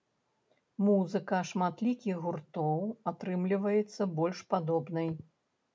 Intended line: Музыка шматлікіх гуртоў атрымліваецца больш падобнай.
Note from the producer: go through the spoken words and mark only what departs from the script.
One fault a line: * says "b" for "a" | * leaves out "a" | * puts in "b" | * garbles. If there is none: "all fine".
all fine